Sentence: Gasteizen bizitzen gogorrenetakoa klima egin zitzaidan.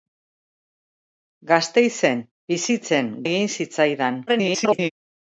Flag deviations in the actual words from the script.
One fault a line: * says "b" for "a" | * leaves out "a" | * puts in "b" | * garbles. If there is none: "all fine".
* leaves out "gogorrenetakoa klima"
* garbles